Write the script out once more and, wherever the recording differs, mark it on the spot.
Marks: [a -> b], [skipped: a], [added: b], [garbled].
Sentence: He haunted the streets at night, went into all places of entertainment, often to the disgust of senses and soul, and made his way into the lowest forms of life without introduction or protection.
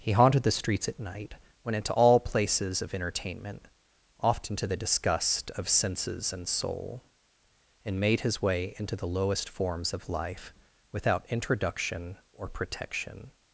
He haunted the streets at night, went into all places of entertainment, often to the disgust of senses and soul, and made his way into the lowest forms of life without introduction or protection.